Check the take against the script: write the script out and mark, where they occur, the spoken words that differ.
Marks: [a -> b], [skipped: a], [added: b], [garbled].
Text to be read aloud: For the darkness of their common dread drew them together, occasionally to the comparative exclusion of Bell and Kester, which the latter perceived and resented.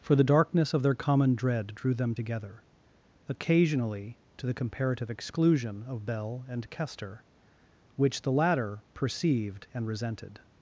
For the darkness of their common dread drew them together, occasionally to the comparative exclusion of Bell and Kester, which the latter perceived and resented.